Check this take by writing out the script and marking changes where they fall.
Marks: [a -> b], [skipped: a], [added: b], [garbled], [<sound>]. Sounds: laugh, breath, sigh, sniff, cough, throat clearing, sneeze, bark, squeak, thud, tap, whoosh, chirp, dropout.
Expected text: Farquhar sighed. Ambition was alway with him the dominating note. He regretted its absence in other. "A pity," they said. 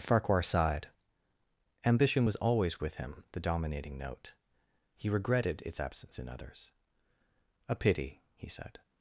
Farquhar sighed. Ambition was [alway -> always] with him the dominating note. He regretted its absence in [other. -> others] "A pity," [they -> he] said.